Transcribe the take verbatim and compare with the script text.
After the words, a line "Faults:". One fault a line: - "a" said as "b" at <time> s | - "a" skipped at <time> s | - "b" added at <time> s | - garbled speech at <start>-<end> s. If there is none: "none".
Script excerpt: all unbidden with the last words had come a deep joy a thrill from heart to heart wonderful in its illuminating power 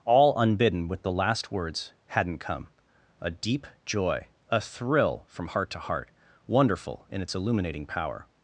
all unbidden with the last words hadn't come a deep joy a thrill from heart to heart wonderful in its illuminating power
Faults:
- "had" said as "hadn't" at 2.1 s